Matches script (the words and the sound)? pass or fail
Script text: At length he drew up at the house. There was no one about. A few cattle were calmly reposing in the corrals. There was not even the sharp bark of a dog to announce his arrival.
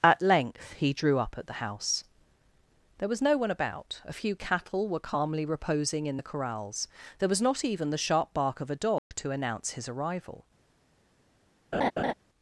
fail